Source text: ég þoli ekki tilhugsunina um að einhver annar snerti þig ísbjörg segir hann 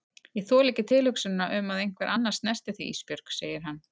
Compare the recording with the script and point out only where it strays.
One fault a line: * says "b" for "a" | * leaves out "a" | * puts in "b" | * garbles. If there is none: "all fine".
all fine